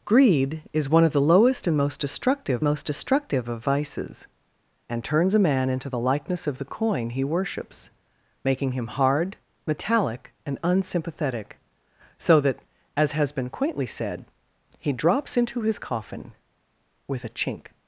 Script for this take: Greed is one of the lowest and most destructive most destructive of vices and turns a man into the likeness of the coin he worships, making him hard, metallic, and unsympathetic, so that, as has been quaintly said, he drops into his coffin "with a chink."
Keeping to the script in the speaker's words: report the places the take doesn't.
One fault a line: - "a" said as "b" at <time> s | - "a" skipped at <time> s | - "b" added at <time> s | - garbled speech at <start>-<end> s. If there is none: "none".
none